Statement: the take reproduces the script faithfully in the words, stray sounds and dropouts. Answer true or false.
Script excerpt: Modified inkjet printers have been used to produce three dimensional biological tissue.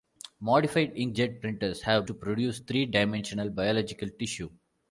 false